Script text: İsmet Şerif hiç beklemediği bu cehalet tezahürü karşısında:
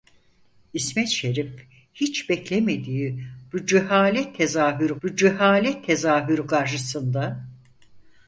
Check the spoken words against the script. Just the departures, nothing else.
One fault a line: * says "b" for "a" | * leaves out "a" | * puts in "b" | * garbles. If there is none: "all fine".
* puts in "bu cehalet tezahürü"